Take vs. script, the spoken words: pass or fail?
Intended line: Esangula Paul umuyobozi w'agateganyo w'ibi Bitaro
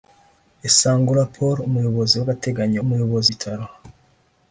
fail